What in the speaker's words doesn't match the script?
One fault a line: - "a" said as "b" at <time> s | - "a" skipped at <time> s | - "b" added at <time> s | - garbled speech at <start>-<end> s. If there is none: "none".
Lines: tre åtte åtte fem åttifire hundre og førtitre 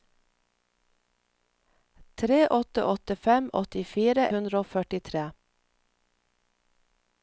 none